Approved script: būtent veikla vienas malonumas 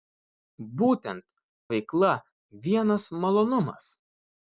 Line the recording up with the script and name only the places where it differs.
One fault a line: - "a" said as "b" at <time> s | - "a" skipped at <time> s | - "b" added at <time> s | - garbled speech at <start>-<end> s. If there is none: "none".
none